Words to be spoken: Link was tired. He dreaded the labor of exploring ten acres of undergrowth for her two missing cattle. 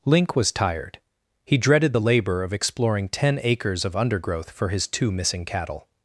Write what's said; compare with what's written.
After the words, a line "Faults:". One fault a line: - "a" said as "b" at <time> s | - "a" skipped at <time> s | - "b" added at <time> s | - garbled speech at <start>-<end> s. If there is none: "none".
Link was tired. He dreaded the labor of exploring ten acres of undergrowth for his two missing cattle.
Faults:
- "her" said as "his" at 4.7 s